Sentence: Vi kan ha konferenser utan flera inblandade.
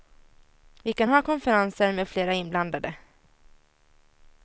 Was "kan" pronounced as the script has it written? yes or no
yes